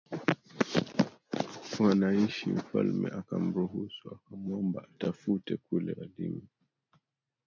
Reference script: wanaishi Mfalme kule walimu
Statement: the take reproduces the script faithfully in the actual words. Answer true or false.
false